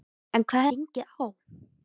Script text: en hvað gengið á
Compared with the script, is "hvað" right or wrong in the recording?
right